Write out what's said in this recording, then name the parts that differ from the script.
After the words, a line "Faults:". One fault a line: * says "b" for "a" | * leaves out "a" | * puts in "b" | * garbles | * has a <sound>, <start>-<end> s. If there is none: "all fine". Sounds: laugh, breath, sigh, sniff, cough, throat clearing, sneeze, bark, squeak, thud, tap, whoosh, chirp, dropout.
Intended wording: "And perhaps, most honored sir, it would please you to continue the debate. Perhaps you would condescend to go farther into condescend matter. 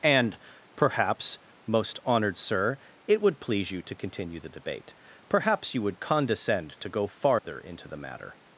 "And perhaps, most honored sir, it would please you to continue the debate. Perhaps you would condescend to go farther into the matter.
Faults:
* has a dropout, 7.4-7.4 s
* says "the" for "condescend"